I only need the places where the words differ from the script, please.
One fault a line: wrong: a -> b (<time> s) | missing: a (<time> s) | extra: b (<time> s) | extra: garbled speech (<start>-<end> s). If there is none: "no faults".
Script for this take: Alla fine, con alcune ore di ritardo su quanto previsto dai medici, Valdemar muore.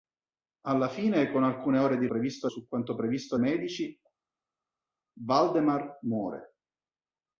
wrong: ritardo -> previsto (2.1 s)
missing: dai (3.4 s)